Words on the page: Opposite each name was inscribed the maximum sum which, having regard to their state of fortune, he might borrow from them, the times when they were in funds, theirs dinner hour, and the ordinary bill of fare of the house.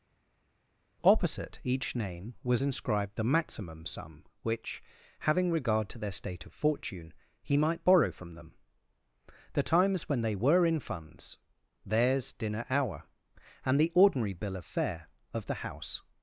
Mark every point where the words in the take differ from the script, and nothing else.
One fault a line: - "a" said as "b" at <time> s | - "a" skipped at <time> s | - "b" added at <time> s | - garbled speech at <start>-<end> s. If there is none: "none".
none